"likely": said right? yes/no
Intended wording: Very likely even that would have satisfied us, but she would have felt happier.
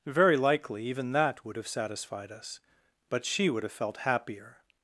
yes